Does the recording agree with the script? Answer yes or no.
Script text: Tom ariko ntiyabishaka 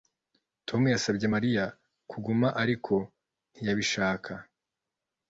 no